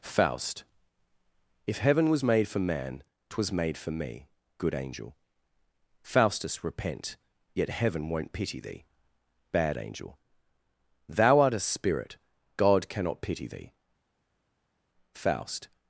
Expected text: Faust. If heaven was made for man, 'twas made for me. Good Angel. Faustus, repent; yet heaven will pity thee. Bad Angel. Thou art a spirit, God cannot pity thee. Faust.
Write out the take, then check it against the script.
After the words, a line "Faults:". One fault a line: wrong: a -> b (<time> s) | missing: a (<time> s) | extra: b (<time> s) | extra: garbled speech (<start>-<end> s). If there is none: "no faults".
Faust. If heaven was made for man, 'twas made for me. Good Angel. Faustus, repent; yet heaven won't pity thee. Bad Angel. Thou art a spirit, God cannot pity thee. Faust.
Faults:
wrong: will -> won't (8.1 s)